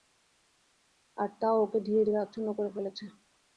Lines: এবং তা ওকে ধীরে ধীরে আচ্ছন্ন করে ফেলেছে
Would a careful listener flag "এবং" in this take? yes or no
yes